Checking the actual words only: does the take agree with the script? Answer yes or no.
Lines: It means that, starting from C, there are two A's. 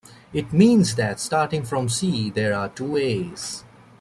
yes